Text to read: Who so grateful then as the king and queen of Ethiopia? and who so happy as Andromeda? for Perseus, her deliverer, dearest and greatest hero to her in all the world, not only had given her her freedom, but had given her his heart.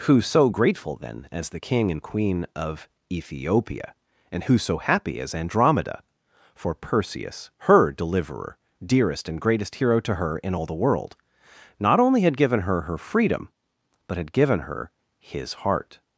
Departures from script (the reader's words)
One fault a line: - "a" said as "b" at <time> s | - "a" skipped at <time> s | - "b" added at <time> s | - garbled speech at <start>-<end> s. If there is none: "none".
none